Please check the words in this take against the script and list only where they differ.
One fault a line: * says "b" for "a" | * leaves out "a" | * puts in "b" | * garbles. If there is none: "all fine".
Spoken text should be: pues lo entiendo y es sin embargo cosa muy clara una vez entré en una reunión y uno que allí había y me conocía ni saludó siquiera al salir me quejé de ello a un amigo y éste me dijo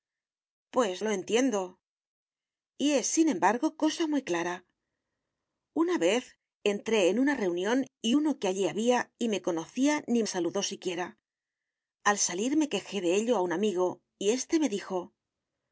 all fine